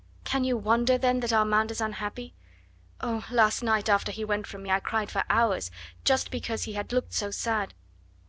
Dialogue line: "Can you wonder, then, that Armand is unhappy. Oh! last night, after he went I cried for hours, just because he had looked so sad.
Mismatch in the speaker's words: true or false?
true